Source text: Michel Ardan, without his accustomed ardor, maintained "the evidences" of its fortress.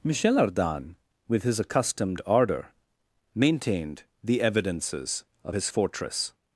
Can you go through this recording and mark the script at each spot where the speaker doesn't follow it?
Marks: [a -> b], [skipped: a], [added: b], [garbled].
Michel Ardan, [without -> with] his accustomed ardor, maintained "the evidences" of [its -> his] fortress.